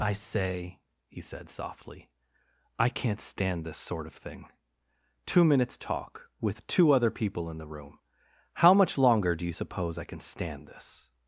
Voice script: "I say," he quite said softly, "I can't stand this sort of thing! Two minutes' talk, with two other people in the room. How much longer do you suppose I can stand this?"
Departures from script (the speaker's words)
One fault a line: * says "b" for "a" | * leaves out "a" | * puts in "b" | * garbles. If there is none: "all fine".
* leaves out "quite"